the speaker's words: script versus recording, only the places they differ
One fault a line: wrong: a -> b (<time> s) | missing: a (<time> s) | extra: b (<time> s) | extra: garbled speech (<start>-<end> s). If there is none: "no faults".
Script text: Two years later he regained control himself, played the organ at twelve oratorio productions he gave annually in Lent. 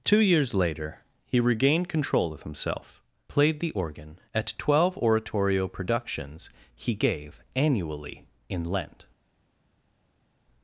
extra: of (2.3 s)